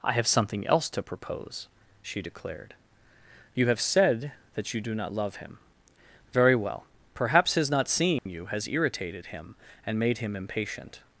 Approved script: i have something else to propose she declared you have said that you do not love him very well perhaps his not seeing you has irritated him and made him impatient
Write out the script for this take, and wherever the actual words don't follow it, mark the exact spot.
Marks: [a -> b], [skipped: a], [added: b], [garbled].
i have something else to propose she declared you have said that you do not love him very well perhaps his not seeing you has irritated him and made him impatient